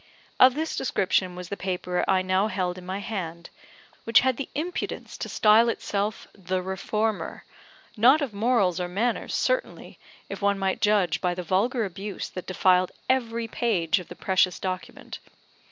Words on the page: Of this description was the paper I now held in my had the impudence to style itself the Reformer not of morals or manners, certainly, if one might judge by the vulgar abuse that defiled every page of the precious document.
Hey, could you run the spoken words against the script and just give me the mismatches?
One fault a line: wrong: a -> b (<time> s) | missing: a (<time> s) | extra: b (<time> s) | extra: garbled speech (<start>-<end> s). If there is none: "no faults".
extra: hand which (3.0 s)